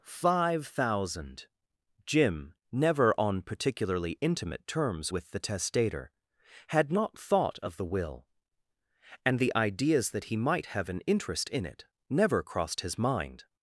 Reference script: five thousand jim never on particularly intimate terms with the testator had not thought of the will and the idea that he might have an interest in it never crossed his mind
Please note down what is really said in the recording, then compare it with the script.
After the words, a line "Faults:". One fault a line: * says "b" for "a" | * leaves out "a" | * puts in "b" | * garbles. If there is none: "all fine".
five thousand jim never on particularly intimate terms with the testator had not thought of the will and the ideas that he might have an interest in it never crossed his mind
Faults:
* says "ideas" for "idea"